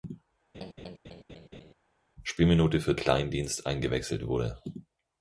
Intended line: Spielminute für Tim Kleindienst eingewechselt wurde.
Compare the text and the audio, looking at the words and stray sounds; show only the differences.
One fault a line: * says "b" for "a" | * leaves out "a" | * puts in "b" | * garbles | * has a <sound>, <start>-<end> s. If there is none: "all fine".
* has a laugh, 0.5-1.7 s
* leaves out "Tim"